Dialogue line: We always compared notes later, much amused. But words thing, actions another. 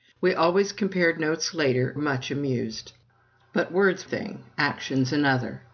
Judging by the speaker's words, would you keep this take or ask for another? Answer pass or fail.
pass